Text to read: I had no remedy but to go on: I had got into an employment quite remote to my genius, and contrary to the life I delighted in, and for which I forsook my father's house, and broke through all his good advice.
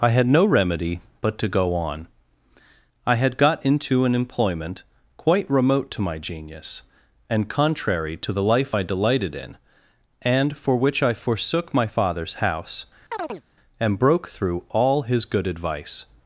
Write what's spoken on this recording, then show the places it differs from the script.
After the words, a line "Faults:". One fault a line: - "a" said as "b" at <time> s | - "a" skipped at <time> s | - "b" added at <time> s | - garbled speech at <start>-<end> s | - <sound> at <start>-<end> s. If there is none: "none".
I had no remedy but to go on: I had got into an employment quite remote to my genius, and contrary to the life I delighted in, and for which I forsook my father's house, and broke through all his good advice.
Faults:
- chirp at 13.1-13.4 s